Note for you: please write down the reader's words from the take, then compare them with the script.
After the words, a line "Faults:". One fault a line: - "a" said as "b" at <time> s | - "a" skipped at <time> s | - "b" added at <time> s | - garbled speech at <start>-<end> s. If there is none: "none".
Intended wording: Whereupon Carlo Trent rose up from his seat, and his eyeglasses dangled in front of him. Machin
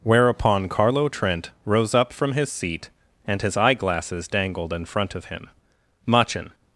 Whereupon Carlo Trent rose up from his seat, and his eyeglasses dangled in front of him. Machin
Faults:
none